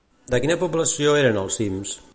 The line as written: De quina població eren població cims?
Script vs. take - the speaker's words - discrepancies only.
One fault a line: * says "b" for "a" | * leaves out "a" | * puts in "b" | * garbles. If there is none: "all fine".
* says "els" for "població"